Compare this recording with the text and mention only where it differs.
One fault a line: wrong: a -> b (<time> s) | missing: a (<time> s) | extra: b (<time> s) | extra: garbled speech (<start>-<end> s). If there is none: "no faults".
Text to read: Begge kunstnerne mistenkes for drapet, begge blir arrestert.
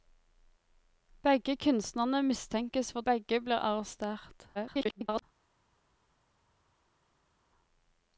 missing: drapet (3.0 s)
extra: garbled speech (4.5-5.2 s)